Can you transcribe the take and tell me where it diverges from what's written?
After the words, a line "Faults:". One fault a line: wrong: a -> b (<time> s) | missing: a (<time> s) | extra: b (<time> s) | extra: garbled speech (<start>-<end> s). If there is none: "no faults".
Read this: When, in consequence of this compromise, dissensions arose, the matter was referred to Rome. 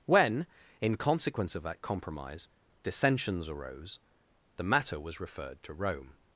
When, in consequence of that compromise, dissensions arose, the matter was referred to Rome.
Faults:
wrong: this -> that (1.6 s)